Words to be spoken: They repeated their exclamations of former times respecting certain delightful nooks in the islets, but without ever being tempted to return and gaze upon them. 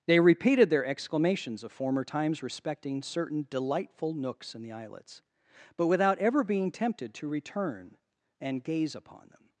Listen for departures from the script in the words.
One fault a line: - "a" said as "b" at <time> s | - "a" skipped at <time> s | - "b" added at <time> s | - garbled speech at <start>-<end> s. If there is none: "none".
none